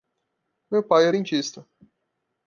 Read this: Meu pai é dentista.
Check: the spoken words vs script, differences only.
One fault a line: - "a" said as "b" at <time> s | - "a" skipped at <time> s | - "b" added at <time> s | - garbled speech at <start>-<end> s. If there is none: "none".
none